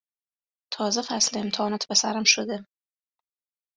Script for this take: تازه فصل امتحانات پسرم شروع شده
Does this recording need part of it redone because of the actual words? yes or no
yes